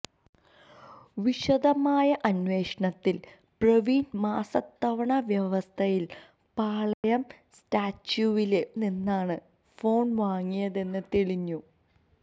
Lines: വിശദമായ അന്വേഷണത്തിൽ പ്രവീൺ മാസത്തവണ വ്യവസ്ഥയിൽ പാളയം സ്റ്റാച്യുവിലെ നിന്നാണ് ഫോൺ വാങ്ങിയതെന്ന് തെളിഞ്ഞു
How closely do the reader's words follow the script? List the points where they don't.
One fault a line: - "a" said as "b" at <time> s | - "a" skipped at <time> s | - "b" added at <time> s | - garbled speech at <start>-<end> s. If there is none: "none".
none